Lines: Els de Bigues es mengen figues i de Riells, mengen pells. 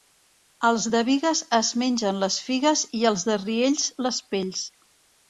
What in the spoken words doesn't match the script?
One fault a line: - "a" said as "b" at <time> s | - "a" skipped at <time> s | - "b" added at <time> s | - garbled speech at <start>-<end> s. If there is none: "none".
- "les" added at 2.2 s
- "els" added at 3.1 s
- "mengen" said as "les" at 4.1 s